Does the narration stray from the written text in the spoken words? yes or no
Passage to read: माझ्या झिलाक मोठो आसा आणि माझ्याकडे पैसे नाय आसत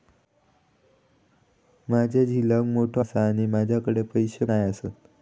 no